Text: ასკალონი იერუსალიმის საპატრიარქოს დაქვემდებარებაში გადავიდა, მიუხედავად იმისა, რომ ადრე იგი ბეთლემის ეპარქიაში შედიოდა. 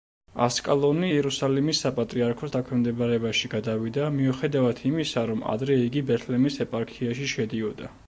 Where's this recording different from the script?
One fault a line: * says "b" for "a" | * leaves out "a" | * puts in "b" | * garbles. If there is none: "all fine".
all fine